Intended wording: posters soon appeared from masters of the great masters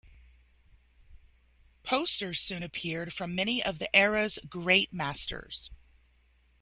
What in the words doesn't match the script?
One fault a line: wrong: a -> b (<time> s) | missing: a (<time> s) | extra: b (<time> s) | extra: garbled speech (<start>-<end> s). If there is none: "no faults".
wrong: masters -> many (3.3 s)
extra: era's (3.9 s)